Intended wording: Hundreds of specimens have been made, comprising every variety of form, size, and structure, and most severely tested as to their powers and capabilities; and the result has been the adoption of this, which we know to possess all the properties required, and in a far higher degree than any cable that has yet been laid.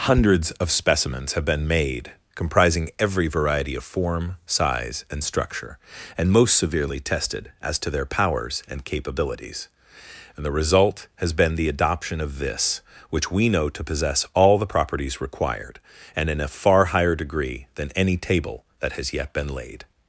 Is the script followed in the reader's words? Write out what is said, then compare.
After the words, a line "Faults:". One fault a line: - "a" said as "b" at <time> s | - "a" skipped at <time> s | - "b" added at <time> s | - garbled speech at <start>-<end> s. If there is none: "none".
Hundreds of specimens have been made, comprising every variety of form, size, and structure, and most severely tested as to their powers and capabilities; and the result has been the adoption of this, which we know to possess all the properties required, and in a far higher degree than any table that has yet been laid.
Faults:
- "cable" said as "table" at 18.2 s